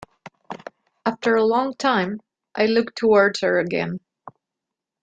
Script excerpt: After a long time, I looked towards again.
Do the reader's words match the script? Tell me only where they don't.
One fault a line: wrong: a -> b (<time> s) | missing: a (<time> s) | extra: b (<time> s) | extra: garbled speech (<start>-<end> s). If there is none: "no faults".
extra: her (3.4 s)